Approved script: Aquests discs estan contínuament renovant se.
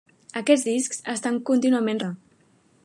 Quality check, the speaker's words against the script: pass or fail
fail